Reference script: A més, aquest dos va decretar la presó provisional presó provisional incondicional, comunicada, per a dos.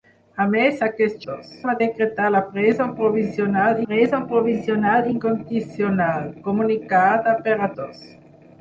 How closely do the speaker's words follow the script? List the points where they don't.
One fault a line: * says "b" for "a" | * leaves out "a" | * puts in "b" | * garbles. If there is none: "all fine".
all fine